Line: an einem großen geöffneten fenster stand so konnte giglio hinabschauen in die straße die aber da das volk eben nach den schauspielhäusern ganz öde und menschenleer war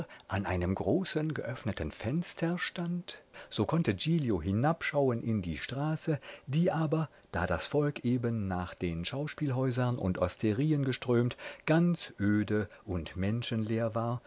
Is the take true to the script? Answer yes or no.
no